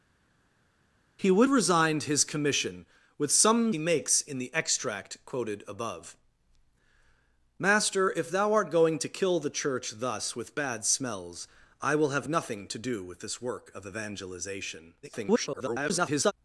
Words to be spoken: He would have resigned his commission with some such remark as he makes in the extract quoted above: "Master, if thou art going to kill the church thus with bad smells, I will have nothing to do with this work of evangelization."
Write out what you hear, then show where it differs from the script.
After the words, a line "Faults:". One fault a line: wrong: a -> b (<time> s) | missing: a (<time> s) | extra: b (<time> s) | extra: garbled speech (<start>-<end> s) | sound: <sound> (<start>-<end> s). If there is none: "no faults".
He would resigned his commission with some he makes in the extract quoted above: "Master, if thou art going to kill the church thus with bad smells, I will have nothing to do with this work of evangelization." [garbled]
Faults:
missing: have (1.5 s)
missing: such remark as (3.7 s)
extra: garbled speech (15.0-16.3 s)